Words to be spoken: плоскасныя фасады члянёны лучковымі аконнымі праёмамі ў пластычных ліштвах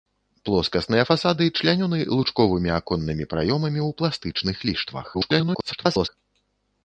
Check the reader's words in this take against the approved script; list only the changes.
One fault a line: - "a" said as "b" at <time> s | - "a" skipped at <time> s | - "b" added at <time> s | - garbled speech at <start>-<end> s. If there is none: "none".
- garbled speech at 5.1-6.1 s